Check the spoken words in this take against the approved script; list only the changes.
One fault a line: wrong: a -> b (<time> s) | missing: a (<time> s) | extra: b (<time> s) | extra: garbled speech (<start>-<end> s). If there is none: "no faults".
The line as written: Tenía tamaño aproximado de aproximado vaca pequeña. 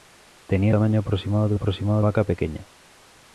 no faults